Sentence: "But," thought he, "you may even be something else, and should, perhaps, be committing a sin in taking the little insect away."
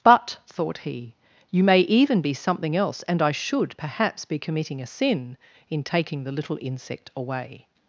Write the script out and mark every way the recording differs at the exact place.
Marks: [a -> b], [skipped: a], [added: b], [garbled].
"But," thought he, "you may even be something else, and [added: I] should, perhaps, be committing a sin in taking the little insect away."